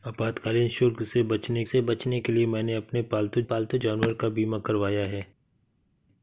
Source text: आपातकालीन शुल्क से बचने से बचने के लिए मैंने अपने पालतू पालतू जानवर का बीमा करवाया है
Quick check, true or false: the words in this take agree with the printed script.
true